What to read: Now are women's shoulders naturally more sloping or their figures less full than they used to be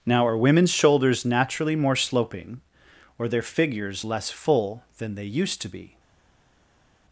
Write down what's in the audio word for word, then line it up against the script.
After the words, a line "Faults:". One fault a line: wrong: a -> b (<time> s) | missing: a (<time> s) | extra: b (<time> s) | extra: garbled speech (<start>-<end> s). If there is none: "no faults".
Now are women's shoulders naturally more sloping or their figures less full than they used to be
Faults:
no faults